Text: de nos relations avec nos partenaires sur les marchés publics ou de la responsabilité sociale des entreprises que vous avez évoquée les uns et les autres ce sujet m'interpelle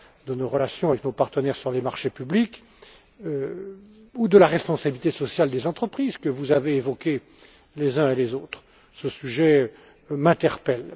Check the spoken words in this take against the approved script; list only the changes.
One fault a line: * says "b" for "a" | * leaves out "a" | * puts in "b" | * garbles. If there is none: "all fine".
all fine